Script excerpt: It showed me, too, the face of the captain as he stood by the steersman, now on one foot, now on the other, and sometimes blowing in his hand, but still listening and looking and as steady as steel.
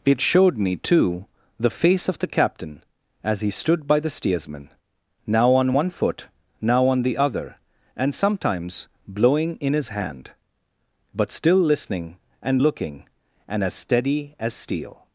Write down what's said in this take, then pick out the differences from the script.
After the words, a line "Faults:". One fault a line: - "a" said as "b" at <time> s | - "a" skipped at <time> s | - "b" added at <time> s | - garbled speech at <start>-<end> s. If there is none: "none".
It showed me, too, the face of the captain as he stood by the steersman, now on one foot, now on the other, and sometimes blowing in his hand, but still listening and looking and as steady as steel.
Faults:
none